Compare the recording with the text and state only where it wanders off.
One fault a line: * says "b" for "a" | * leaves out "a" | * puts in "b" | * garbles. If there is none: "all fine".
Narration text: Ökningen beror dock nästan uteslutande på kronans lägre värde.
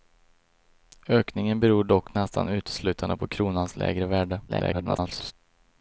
* garbles